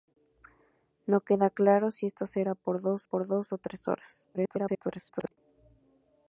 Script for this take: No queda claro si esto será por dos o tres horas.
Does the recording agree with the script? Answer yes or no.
no